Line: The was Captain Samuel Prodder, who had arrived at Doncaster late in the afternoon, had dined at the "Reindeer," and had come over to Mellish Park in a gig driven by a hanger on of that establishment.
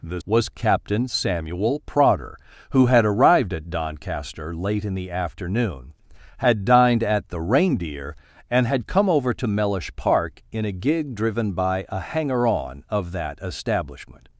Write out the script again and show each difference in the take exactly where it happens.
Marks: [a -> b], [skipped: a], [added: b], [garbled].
The was Captain Samuel Prodder, who had arrived at Doncaster late in the afternoon, had dined at the "Reindeer," and had come over to Mellish Park in a gig driven by a hanger on of that establishment.